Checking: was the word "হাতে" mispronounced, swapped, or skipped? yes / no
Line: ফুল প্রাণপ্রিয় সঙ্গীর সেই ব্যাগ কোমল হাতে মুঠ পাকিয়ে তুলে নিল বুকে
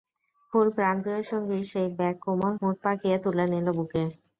yes